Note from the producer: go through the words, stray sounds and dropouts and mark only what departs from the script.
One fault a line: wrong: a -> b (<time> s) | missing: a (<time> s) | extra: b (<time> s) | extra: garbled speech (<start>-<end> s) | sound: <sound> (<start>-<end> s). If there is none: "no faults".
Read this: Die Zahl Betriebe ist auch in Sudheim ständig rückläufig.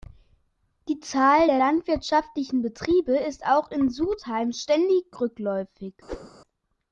extra: der landwirtschaftlichen (1.4 s)
sound: whoosh (6.1-6.3 s)